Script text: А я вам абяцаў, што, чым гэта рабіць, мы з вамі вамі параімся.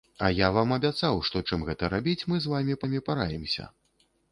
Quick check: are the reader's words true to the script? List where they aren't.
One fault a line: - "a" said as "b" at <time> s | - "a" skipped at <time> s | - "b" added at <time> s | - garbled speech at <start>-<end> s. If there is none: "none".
none